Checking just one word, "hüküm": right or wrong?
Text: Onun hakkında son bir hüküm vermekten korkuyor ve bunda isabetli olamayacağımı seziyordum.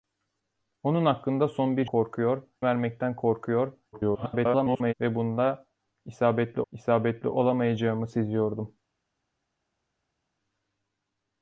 wrong